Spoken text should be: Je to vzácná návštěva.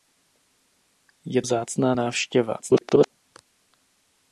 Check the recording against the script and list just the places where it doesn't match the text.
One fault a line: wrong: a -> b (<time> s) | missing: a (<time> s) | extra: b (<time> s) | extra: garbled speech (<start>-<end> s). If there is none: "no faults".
missing: to (1.4 s)
extra: garbled speech (2.6-3.1 s)